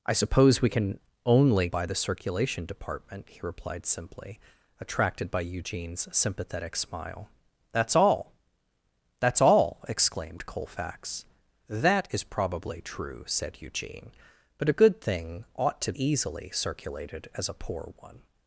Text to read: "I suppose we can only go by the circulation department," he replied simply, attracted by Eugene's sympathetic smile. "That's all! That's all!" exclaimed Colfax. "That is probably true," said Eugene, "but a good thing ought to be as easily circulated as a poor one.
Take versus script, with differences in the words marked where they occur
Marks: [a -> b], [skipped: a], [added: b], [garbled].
"I suppose we can only [skipped: go] by the circulation department," he replied simply, attracted by Eugene's sympathetic smile. "That's all! That's all!" exclaimed Colfax. "That is probably true," said Eugene, "but a good thing ought to [skipped: be as] easily circulated as a poor one.